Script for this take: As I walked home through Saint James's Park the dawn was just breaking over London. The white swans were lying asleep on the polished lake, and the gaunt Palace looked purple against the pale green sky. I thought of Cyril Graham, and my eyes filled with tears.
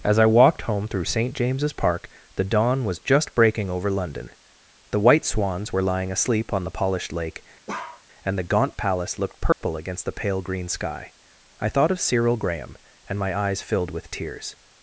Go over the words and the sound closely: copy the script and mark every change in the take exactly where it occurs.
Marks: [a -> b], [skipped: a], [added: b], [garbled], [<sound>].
As I walked home through Saint James's Park the dawn was just breaking over London. The white swans were lying asleep on the polished lake, [bark] and the gaunt Palace looked purple [dropout] against the pale green sky. I thought of Cyril Graham, and my eyes filled with tears.